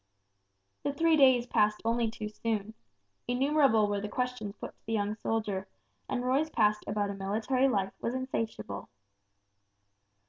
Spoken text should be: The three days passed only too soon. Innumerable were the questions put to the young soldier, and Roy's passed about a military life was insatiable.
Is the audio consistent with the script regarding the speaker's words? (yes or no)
yes